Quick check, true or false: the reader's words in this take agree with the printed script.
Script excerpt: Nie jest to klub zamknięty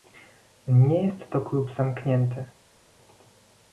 true